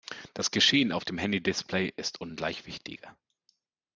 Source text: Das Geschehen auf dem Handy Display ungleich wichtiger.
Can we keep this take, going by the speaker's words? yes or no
no